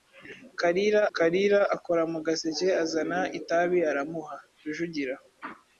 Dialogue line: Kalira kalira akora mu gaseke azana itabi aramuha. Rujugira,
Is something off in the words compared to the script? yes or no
no